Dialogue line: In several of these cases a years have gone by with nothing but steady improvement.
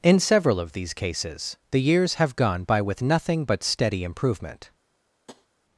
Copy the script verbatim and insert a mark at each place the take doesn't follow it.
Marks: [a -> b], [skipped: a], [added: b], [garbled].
In several of these cases [a -> the] years have gone by with nothing but steady improvement.